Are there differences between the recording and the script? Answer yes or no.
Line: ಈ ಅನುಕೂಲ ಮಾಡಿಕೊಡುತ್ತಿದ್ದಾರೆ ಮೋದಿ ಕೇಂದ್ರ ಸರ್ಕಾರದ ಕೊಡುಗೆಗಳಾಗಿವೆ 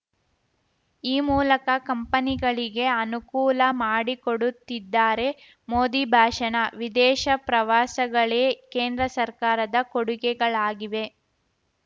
yes